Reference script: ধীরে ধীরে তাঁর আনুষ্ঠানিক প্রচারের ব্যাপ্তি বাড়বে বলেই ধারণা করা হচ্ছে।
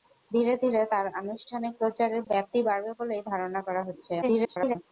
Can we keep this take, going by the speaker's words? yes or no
no